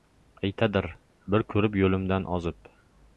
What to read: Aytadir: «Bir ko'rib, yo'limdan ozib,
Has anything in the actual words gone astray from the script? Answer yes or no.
no